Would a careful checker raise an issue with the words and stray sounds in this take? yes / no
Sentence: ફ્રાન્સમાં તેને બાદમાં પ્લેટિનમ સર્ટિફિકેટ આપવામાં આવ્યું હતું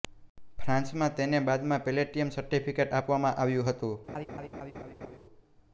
yes